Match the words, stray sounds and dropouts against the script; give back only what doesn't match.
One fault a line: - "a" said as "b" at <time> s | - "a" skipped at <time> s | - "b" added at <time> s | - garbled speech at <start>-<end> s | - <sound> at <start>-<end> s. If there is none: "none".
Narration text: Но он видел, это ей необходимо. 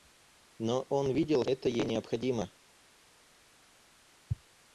none